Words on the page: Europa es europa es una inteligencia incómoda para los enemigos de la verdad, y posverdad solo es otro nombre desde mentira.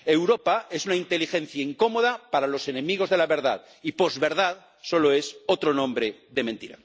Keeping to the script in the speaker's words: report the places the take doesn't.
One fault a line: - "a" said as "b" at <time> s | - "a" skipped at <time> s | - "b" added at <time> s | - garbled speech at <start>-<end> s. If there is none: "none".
- "europa es" skipped at 0.9 s
- "desde" said as "de" at 6.3 s